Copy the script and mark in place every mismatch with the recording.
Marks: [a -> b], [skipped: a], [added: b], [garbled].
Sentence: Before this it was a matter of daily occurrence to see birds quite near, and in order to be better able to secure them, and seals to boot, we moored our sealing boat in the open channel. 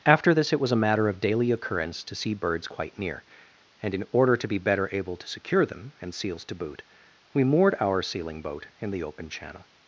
[Before -> After] this it was a matter of daily occurrence to see birds quite near, and in order to be better able to secure them, and seals to boot, we moored our sealing boat in the open channel.